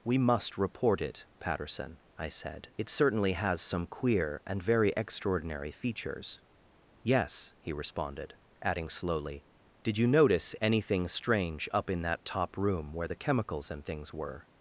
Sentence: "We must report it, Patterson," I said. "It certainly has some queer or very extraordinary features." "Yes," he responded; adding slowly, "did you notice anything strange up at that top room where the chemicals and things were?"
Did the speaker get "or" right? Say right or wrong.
wrong